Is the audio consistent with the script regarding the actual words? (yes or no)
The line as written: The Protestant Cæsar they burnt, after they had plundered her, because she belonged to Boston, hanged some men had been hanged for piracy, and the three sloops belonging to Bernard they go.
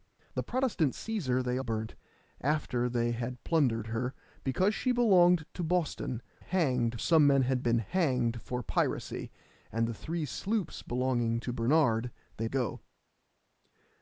yes